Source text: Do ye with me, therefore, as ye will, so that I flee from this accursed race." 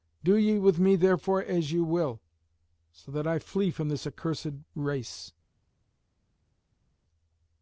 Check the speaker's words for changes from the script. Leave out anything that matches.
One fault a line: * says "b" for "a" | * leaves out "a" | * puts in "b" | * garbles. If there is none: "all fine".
all fine